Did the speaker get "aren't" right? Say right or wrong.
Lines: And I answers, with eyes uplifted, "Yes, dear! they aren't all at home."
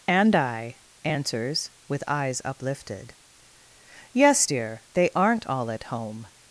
right